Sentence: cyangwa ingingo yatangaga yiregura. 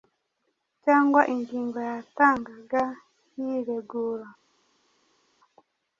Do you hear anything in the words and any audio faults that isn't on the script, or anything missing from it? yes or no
no